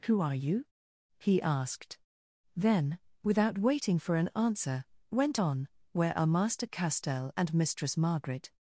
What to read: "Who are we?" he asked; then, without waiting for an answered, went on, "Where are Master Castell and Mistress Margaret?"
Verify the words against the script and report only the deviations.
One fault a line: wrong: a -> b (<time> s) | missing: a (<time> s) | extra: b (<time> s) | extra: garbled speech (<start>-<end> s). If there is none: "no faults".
wrong: we -> you (0.3 s)
wrong: answered -> answer (4.3 s)